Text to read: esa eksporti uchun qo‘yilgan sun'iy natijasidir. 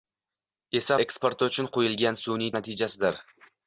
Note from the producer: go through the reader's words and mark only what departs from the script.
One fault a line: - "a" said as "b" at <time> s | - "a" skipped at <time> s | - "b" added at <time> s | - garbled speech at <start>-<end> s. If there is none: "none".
none